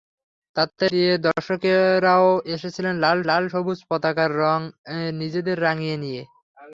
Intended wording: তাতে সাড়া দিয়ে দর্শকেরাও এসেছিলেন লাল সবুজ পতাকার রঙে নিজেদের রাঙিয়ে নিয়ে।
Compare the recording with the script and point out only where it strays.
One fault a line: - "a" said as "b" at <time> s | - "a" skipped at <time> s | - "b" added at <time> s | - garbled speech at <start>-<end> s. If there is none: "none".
- "সাড়া" skipped at 0.8 s
- "লাল" added at 3.3 s